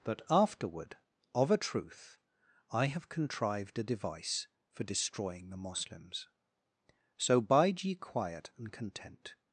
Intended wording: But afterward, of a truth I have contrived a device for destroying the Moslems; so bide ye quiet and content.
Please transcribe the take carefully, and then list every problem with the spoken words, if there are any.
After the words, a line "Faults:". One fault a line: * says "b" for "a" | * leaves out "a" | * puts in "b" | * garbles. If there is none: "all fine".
But afterward, of a truth I have contrived a device for destroying the Moslems; so bide ye quiet and content.
Faults:
all fine